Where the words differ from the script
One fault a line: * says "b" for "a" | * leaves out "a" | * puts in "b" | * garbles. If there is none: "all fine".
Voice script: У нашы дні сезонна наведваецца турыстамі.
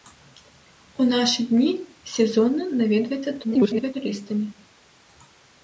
* garbles